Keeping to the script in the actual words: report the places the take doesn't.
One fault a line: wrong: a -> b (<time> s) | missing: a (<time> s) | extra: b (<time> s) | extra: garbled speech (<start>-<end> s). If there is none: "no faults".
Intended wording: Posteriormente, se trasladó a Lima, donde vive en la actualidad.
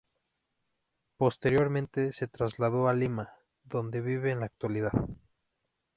no faults